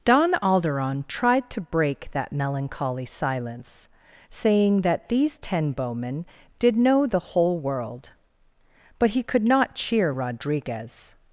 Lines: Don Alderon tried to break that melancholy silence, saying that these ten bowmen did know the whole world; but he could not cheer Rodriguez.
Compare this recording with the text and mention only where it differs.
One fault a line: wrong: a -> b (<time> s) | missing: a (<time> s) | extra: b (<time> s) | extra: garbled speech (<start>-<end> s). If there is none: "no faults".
no faults